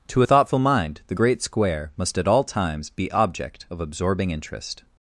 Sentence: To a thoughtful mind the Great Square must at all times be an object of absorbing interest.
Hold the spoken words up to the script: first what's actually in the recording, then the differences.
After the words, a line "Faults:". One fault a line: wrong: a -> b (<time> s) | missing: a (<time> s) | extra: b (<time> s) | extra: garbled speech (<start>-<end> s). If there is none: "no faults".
To a thoughtful mind the Great Square must at all times be object of absorbing interest.
Faults:
missing: an (3.1 s)